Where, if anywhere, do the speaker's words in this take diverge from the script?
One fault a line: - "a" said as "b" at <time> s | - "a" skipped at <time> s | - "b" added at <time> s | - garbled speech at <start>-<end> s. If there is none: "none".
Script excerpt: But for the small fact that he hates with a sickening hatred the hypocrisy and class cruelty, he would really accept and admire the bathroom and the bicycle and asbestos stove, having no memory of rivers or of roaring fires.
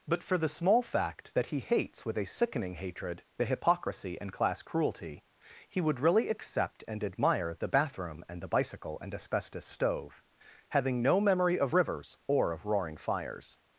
none